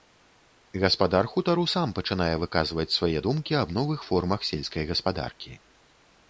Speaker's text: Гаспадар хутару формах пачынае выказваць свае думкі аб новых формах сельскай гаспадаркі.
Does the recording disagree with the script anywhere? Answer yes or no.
yes